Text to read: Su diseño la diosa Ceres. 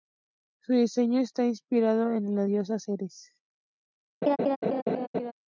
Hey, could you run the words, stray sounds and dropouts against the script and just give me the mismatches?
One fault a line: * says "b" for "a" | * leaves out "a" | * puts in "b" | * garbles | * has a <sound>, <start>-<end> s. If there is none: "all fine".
* puts in "está inspirado en"
* has a laugh, 4.2-5.3 s